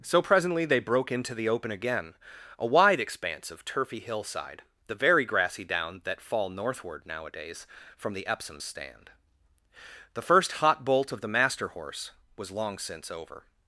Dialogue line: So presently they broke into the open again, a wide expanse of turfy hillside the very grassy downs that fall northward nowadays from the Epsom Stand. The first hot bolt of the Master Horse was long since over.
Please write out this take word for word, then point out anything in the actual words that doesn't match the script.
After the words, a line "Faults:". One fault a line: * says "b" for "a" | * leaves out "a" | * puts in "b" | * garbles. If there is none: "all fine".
So presently they broke into the open again, a wide expanse of turfy hillside the very grassy down that fall northward nowadays from the Epsom Stand. The first hot bolt of the Master Horse was long since over.
Faults:
* says "down" for "downs"